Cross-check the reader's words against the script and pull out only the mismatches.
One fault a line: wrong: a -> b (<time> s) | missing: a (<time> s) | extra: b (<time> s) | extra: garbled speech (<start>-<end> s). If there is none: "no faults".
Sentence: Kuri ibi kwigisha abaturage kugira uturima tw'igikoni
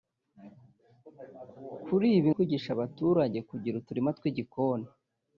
no faults